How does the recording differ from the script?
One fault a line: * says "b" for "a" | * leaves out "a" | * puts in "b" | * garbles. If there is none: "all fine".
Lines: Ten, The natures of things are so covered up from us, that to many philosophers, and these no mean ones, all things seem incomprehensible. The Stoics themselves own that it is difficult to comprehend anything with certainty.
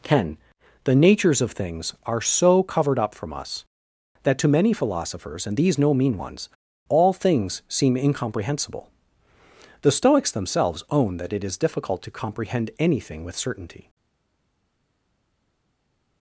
all fine